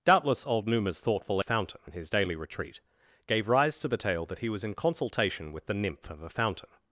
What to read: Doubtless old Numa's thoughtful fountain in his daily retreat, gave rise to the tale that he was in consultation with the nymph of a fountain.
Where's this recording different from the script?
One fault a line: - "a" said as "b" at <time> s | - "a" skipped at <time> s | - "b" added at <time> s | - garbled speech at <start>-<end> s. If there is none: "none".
none